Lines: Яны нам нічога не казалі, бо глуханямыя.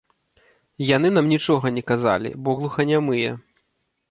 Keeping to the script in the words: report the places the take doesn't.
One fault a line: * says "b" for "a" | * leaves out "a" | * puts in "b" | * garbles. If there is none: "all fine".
all fine